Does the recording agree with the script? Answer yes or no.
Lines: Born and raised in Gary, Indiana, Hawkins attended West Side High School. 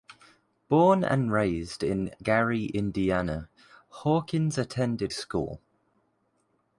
no